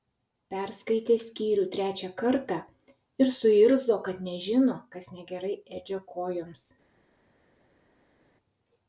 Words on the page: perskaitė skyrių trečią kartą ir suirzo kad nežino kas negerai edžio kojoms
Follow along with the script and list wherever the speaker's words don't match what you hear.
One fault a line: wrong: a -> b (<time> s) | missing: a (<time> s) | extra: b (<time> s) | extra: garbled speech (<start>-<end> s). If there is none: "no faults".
no faults